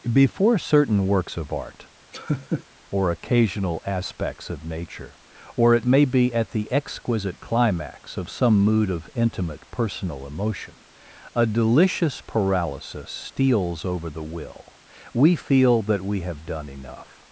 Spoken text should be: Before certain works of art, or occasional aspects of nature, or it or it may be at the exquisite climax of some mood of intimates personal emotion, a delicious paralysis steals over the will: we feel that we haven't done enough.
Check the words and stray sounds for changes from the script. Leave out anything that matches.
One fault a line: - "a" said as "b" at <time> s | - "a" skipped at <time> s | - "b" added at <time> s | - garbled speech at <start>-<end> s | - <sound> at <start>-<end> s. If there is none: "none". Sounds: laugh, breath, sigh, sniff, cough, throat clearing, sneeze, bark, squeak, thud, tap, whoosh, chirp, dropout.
- laugh at 2.1-2.6 s
- "or it" skipped at 5.8 s
- "intimates" said as "intimate" at 9.2 s
- "haven't" said as "have" at 16.2 s